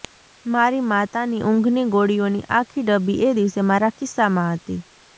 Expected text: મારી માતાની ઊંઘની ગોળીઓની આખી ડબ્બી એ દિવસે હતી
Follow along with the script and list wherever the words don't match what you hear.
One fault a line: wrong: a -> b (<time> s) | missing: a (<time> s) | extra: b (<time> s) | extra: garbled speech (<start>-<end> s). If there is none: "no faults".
extra: મારા ખિસ્સામાં (3.7 s)